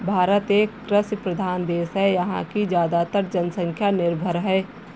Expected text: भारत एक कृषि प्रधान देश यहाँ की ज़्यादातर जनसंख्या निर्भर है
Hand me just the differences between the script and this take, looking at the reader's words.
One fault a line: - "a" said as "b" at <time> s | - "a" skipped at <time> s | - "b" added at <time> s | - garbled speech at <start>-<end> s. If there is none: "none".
- "है" added at 1.9 s